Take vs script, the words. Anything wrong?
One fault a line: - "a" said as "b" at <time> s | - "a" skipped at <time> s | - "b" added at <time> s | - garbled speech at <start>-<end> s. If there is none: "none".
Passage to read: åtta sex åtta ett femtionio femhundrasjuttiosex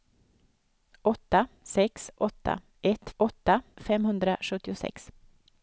- "femtionio" said as "åtta" at 3.2 s